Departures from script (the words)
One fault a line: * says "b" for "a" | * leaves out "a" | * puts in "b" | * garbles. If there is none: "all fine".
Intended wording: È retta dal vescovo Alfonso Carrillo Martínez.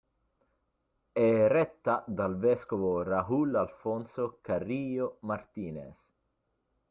* puts in "Raúl"